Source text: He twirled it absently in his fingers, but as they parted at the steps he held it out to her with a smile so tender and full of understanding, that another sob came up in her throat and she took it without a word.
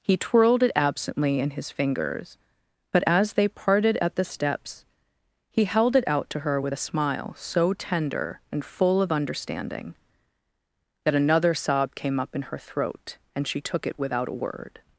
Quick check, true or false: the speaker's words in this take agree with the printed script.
true